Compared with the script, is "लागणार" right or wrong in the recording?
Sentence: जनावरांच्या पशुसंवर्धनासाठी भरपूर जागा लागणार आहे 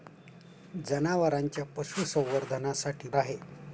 wrong